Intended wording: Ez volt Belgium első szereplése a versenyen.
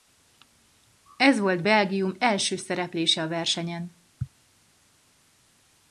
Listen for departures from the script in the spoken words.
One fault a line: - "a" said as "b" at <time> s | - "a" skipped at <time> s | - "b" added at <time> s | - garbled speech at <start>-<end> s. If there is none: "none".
none